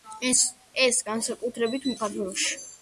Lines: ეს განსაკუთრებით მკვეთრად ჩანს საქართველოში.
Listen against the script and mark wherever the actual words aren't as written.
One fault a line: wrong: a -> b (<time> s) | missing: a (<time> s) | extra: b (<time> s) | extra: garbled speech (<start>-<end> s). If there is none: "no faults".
missing: მკვეთრად ჩანს (1.9 s)